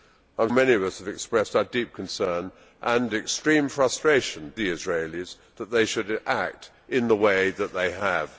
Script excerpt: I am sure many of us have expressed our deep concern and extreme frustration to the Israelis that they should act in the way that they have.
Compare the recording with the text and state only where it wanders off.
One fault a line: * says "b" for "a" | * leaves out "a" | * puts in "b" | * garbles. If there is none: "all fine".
* leaves out "sure"
* leaves out "to"